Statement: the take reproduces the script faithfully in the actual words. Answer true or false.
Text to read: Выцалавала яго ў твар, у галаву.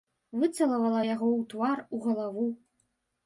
true